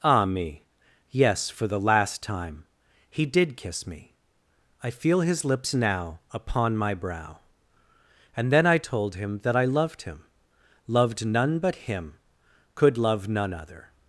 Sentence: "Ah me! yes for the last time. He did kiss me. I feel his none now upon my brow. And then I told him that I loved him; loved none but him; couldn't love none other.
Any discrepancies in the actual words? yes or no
yes